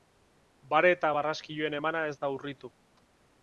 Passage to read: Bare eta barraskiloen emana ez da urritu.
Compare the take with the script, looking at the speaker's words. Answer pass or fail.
pass